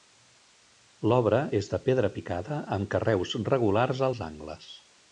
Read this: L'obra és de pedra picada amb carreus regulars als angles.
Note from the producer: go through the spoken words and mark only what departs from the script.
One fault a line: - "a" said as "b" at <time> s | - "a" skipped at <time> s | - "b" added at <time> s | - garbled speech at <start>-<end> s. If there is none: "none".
none